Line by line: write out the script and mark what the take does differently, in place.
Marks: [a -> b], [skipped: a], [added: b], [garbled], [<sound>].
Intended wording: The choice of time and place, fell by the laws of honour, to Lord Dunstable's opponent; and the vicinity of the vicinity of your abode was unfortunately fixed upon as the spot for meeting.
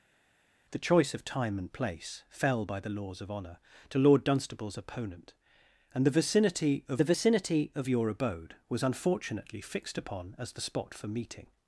The choice of time and place, fell by the laws of honour, to Lord Dunstable's opponent; and the vicinity of the vicinity of your abode was unfortunately fixed upon as the spot for meeting.